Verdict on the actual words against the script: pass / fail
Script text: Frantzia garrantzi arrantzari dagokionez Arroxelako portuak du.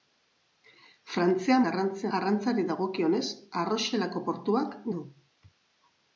pass